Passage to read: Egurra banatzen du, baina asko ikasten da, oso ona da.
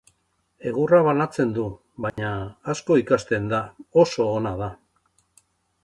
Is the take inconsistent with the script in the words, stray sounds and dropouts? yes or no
yes